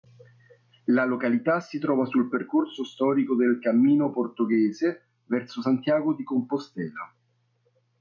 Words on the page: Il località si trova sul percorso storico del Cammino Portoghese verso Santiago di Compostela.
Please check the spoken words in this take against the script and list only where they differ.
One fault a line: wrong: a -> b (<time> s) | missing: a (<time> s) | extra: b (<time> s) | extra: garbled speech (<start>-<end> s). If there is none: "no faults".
wrong: Il -> La (0.8 s)